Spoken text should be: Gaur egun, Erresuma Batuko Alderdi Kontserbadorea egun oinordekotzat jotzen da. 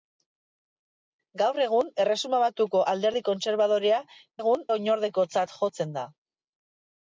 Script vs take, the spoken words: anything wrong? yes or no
no